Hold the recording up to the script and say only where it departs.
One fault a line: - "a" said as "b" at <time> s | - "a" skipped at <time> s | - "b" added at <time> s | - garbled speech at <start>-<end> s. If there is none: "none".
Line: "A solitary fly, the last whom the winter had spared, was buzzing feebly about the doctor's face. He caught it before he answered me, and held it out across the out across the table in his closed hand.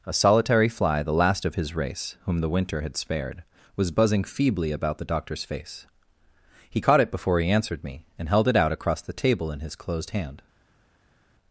- "of his race" added at 1.4 s
- "out across the" skipped at 9.1 s